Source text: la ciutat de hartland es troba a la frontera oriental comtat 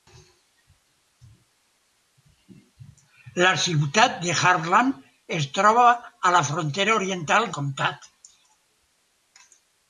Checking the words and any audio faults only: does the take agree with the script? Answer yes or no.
yes